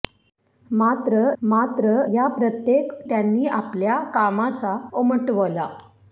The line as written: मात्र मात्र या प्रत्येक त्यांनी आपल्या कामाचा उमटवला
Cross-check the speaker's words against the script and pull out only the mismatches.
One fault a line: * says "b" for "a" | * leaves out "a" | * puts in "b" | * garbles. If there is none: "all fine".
all fine